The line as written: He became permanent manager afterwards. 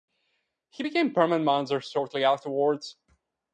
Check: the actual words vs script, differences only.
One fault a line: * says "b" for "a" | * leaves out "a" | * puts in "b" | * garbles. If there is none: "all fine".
* puts in "shortly"